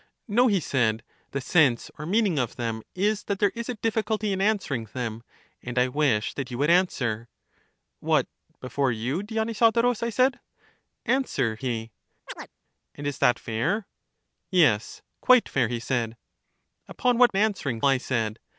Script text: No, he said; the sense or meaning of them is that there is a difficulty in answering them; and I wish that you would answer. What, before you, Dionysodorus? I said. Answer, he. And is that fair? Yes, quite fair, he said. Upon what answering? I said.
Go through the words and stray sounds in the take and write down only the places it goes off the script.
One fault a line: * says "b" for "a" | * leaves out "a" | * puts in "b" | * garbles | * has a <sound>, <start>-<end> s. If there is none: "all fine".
* has a chirp, 12.3-12.5 s